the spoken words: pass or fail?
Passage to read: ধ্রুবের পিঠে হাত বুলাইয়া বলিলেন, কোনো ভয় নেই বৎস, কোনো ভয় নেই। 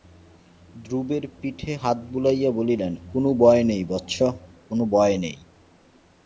pass